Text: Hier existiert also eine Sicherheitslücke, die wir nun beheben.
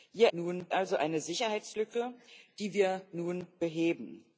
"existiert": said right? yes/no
no